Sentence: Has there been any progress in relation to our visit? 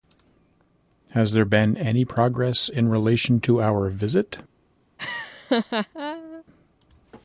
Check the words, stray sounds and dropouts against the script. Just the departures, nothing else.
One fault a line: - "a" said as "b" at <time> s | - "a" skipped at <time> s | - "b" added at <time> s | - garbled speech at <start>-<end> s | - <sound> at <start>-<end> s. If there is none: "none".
- laugh at 5.0-6.4 s